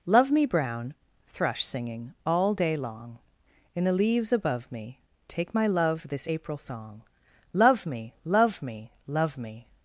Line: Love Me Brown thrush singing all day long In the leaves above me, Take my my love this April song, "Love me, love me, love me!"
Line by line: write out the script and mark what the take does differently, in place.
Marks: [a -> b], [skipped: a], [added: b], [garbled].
Love Me Brown thrush singing all day long In the leaves above me, Take my [skipped: my] love this April song, "Love me, love me, love me!"